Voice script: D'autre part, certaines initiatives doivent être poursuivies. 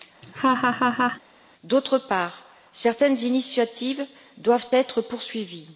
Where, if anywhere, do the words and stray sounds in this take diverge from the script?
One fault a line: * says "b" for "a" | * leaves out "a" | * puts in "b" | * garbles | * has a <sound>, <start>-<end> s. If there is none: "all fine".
* has a laugh, 0.2-1.2 s